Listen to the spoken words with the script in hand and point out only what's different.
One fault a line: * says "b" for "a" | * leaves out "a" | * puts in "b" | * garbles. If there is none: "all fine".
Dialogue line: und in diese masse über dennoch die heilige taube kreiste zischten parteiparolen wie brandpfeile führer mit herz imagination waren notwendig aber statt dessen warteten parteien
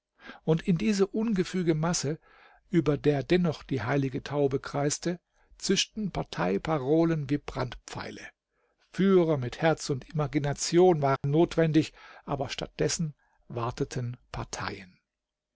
* puts in "ungefüge"
* puts in "der"
* puts in "und"